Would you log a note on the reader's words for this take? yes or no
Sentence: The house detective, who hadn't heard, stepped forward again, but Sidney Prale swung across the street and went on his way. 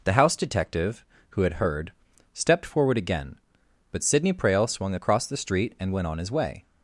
yes